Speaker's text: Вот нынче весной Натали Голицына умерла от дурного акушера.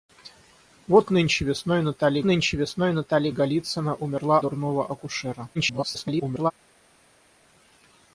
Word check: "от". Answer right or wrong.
wrong